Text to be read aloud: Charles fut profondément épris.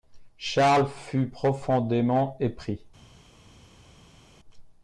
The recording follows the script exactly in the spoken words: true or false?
true